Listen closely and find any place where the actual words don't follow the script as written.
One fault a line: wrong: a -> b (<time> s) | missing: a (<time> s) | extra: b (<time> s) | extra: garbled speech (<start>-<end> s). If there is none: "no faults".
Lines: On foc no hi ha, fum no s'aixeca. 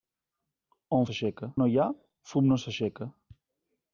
wrong: foc -> s'aixeca (1.1 s)